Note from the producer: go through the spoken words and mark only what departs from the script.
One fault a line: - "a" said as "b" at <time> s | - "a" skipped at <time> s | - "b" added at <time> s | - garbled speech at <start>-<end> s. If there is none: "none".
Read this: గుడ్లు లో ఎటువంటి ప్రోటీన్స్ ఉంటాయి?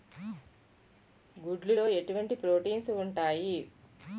none